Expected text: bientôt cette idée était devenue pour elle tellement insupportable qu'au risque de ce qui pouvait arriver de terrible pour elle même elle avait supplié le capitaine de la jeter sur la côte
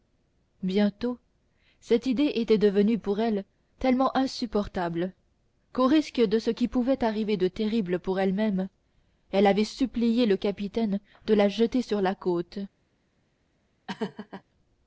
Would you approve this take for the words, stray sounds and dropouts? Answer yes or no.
no